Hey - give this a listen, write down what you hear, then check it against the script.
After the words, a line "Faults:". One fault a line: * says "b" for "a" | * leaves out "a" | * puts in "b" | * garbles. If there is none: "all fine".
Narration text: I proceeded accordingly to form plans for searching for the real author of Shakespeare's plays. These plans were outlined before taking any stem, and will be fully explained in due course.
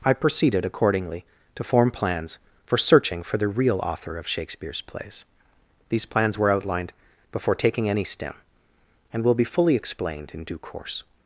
I proceeded accordingly to form plans for searching for the real author of Shakespeare's plays. These plans were outlined before taking any stem, and will be fully explained in due course.
Faults:
all fine